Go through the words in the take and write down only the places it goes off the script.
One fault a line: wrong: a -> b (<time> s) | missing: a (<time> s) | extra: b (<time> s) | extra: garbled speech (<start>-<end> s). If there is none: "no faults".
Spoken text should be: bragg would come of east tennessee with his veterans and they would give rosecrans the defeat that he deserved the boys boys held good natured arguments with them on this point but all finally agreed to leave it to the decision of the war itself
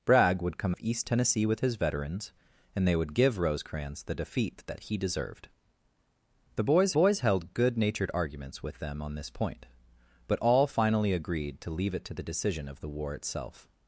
no faults